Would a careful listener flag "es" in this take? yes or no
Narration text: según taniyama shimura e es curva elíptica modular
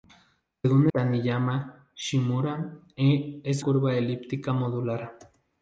no